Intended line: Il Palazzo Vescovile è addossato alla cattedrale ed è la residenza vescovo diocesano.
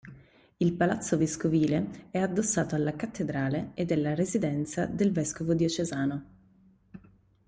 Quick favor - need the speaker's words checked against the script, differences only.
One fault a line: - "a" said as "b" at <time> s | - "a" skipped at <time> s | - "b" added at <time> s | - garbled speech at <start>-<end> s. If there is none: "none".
- "del" added at 4.9 s